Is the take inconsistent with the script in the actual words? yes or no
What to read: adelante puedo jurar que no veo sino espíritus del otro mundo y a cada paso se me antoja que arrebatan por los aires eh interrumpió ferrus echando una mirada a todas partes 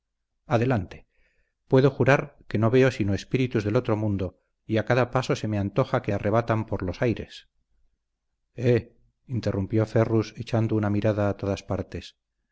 no